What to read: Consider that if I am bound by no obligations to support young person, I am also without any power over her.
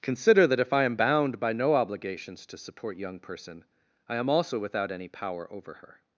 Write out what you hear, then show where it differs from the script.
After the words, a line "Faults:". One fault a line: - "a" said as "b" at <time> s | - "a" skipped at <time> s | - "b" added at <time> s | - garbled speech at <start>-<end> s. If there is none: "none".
Consider that if I am bound by no obligations to support young person, I am also without any power over her.
Faults:
none